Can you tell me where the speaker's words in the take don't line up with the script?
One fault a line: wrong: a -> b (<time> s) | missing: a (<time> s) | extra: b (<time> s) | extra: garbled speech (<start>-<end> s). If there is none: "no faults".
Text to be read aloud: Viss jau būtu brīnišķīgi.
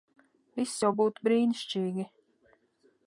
no faults